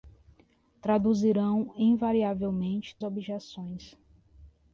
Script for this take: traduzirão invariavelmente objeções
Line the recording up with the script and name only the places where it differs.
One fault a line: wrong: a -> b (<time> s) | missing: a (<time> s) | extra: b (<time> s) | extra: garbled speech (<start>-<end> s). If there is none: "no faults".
no faults